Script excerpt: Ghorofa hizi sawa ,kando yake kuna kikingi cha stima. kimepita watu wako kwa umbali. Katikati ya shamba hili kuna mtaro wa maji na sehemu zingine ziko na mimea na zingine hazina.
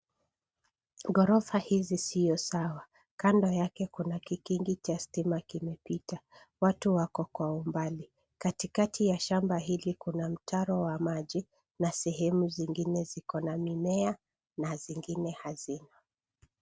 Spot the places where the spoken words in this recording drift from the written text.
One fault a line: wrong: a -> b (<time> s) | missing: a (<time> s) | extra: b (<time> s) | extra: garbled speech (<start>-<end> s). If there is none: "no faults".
extra: sio (2.0 s)